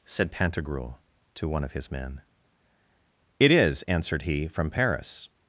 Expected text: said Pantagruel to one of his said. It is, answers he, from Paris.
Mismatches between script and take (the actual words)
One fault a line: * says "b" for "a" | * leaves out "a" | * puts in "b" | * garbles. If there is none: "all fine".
* says "men" for "said"
* says "answered" for "answers"